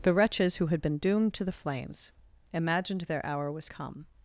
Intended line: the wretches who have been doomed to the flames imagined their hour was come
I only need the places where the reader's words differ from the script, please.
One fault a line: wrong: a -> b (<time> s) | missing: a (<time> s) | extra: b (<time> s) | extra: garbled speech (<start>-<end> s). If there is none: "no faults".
wrong: have -> had (0.7 s)